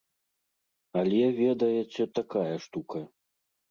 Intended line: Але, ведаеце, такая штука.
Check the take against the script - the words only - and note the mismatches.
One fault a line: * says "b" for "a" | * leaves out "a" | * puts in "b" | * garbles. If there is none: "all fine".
all fine